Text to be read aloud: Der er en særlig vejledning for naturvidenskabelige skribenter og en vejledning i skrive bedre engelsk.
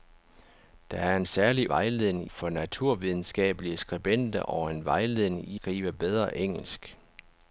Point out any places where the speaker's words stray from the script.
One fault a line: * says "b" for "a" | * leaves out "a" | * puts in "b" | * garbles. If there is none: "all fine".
all fine